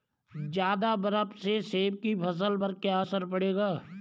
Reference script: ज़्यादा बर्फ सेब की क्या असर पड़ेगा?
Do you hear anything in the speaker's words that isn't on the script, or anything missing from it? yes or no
yes